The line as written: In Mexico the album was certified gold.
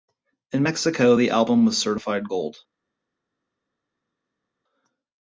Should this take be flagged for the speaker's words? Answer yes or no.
no